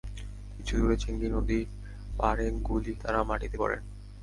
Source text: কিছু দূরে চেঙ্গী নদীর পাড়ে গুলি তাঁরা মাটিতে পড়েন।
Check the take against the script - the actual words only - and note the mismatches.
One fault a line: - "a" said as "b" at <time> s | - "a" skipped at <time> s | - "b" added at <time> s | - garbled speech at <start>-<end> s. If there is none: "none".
none